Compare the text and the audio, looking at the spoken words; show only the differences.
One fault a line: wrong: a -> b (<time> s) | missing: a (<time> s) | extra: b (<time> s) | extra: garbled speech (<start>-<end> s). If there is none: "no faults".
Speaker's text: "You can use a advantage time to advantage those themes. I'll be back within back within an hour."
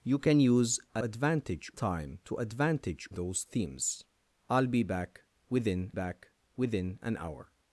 no faults